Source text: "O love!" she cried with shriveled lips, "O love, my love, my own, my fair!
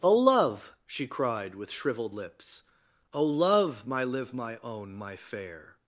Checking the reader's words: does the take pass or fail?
fail